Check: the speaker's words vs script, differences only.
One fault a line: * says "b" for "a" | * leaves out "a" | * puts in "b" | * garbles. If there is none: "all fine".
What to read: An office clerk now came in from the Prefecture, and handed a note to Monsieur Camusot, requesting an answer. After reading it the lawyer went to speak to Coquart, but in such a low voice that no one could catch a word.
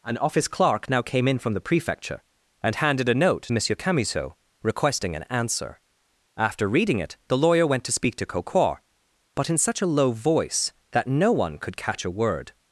* leaves out "to"